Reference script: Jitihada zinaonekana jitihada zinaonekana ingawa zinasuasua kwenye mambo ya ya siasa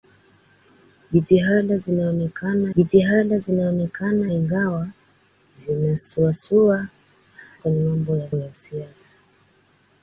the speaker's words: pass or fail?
pass